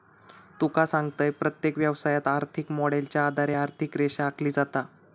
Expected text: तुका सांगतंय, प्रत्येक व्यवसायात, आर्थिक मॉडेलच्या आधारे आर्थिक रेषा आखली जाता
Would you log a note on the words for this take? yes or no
no